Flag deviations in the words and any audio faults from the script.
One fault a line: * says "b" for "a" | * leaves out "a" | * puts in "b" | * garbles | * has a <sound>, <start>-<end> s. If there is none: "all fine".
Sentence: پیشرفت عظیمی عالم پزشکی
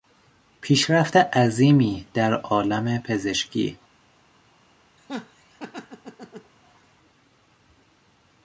* puts in "در"
* has a laugh, 5.0-6.5 s